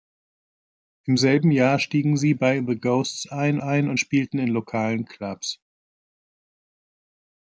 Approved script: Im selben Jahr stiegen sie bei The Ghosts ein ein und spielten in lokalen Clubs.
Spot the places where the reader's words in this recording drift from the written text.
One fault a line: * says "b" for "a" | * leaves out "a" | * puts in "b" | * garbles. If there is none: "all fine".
all fine